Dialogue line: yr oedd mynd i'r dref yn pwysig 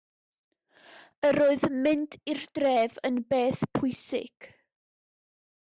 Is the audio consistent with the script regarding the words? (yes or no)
no